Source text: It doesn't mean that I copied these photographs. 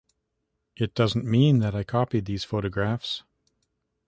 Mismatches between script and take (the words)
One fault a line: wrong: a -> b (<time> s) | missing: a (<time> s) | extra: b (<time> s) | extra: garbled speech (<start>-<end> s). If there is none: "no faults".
no faults